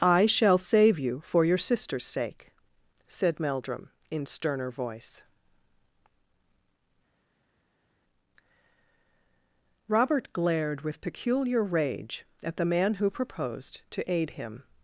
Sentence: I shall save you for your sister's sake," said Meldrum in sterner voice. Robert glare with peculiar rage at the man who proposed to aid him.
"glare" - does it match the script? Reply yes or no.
no